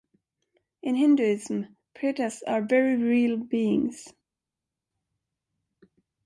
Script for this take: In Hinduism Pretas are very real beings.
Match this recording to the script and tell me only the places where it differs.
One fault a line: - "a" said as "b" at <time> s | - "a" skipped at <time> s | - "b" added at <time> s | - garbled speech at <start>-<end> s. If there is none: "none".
none